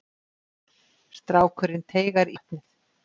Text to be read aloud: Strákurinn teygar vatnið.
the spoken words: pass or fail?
pass